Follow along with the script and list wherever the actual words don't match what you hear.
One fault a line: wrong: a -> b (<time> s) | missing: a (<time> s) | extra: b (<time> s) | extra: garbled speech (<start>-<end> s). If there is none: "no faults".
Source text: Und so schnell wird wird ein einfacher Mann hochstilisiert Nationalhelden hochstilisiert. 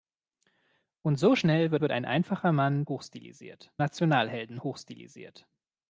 no faults